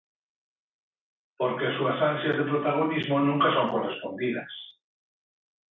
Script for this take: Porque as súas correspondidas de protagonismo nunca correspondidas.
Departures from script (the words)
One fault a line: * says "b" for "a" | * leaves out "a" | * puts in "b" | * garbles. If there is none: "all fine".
* says "ansias" for "correspondidas"
* puts in "son"